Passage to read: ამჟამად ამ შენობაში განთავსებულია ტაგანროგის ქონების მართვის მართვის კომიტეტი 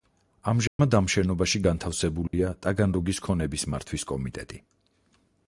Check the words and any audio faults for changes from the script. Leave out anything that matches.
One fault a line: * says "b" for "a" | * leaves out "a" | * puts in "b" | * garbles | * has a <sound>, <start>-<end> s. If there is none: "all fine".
* has a dropout, 0.7-0.8 s
* has a dropout, 2.3-2.3 s
* leaves out "მართვის"